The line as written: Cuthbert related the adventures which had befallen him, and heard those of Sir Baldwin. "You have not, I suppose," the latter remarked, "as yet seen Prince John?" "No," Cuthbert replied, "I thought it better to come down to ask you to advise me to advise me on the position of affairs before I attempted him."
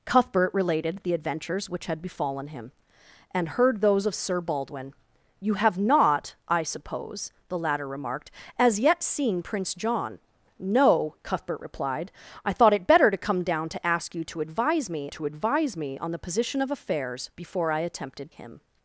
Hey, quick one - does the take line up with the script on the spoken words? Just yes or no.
yes